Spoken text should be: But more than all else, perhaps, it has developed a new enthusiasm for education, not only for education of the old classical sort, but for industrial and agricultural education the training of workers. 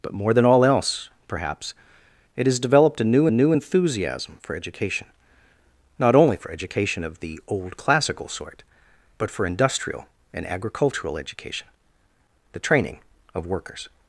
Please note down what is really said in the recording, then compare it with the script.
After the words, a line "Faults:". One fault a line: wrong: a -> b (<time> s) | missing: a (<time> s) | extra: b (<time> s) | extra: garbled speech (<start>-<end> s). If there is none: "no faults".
But more than all else, perhaps, it has developed a new new enthusiasm for education, not only for education of the old classical sort, but for industrial and agricultural education the training of workers.
Faults:
extra: new (3.3 s)